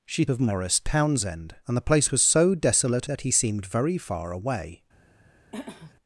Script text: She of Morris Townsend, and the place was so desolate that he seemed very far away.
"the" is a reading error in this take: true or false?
false